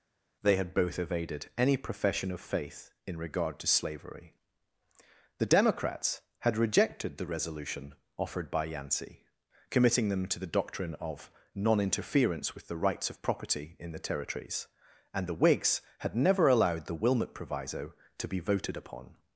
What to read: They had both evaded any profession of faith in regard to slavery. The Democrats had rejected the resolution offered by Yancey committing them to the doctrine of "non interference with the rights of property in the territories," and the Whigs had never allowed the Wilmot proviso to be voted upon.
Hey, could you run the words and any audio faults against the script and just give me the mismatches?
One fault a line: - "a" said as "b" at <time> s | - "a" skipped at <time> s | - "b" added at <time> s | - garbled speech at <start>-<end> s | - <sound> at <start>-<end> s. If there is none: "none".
none